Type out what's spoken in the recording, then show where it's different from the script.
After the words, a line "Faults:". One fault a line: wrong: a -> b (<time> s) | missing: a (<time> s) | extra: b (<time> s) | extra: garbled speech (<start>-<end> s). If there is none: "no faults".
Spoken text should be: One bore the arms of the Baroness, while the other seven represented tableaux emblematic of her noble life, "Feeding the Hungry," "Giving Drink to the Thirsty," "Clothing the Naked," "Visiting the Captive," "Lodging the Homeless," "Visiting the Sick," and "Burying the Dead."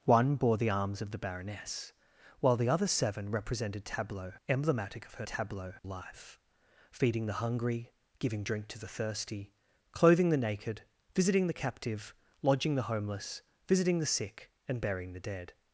One bore the arms of the Baroness, while the other seven represented tableaux emblematic of her tableaux life, "Feeding the Hungry," "Giving Drink to the Thirsty," "Clothing the Naked," "Visiting the Captive," "Lodging the Homeless," "Visiting the Sick," and "Burying the Dead."
Faults:
wrong: noble -> tableaux (5.3 s)